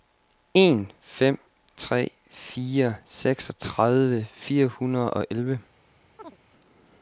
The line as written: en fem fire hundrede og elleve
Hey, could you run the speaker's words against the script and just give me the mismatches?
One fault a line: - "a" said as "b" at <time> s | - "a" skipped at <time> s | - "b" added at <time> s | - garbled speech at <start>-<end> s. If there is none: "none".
- "tre fire seksogtredive" added at 1.8 s